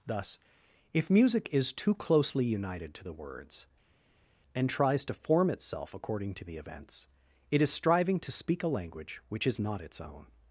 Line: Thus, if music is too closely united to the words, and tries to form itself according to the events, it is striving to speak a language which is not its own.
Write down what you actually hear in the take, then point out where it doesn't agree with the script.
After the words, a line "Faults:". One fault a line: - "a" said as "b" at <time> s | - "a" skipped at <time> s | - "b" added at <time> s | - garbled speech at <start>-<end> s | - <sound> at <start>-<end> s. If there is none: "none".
Thus, if music is too closely united to the words, and tries to form itself according to the events, it is striving to speak a language which is not its own.
Faults:
none